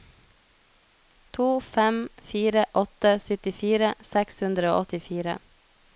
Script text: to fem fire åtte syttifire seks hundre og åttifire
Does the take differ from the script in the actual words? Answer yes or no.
no